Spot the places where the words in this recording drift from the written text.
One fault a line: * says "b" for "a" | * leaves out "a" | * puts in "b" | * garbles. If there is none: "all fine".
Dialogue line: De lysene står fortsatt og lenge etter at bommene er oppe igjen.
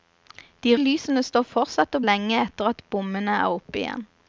all fine